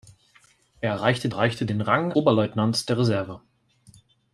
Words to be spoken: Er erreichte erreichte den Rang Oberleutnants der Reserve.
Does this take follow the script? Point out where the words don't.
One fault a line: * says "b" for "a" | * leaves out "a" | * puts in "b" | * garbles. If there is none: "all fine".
all fine